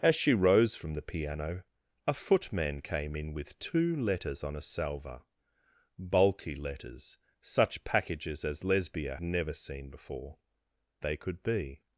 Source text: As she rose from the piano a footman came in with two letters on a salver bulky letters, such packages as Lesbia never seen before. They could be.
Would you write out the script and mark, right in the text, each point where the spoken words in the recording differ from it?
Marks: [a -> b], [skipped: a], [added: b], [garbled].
As she rose from the piano a footman came in with two letters on a salver bulky letters, such packages as Lesbia never seen before. They could be.